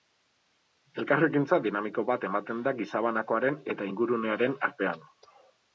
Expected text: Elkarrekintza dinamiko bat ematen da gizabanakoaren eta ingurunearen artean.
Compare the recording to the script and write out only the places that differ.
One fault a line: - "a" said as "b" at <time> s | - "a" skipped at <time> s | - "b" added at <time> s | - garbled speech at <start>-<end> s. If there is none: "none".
none